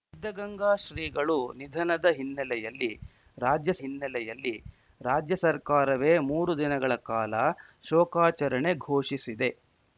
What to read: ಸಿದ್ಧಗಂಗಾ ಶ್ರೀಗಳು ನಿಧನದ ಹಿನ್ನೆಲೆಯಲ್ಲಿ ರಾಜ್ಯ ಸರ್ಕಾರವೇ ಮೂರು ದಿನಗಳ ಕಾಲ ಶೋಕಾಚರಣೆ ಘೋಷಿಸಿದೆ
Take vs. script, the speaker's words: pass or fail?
fail